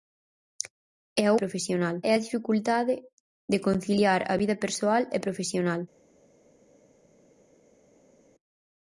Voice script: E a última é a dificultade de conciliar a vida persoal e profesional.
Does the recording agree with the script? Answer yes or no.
no